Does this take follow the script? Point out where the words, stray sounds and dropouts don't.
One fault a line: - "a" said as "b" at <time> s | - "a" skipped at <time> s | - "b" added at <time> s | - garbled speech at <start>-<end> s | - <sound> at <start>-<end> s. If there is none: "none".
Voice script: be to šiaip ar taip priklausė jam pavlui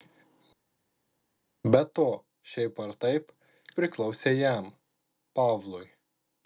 none